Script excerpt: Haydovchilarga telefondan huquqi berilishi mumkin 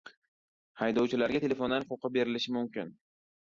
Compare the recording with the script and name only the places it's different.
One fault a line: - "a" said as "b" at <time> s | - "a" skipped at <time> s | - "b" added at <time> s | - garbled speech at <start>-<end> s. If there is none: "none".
none